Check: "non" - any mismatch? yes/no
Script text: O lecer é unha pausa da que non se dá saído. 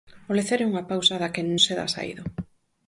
yes